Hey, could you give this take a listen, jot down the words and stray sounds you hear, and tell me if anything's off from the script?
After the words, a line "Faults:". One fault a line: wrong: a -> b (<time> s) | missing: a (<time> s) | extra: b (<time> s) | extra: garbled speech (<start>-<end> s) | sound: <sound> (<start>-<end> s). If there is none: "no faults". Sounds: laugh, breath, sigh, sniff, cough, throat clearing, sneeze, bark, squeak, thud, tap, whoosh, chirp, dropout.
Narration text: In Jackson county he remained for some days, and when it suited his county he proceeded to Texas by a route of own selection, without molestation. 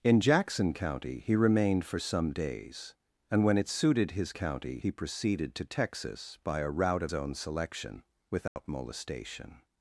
In Jackson county he remained for some days, and when it suited his county he proceeded to Texas by a route of own selection, without molestation.
Faults:
sound: dropout (8.5-8.6 s)